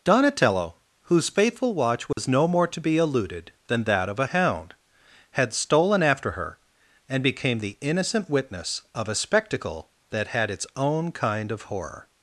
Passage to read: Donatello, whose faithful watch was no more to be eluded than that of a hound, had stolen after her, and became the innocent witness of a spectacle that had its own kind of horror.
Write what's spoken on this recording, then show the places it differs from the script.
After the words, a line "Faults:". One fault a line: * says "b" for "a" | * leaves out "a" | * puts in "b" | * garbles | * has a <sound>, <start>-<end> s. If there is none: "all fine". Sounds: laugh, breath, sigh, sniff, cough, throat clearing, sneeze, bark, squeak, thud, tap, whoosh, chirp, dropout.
Donatello, whose faithful watch was no more to be eluded than that of a hound, had stolen after her, and became the innocent witness of a spectacle that had its own kind of horror.
Faults:
* has a dropout, 2.1-2.2 s